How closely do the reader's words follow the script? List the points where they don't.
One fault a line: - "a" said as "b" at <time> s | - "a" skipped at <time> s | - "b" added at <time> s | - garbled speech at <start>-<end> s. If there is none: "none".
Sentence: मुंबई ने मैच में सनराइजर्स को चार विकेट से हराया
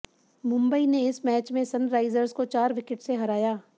- "इस" added at 1.1 s